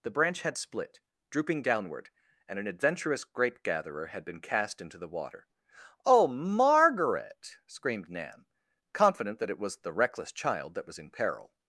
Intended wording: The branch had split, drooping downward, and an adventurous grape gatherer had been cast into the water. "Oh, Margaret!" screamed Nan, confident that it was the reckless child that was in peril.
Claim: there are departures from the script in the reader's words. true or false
false